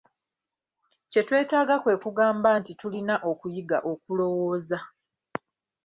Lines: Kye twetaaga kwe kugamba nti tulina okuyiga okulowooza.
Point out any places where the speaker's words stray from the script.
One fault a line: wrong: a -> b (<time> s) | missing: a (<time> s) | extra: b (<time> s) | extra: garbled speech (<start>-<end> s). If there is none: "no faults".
no faults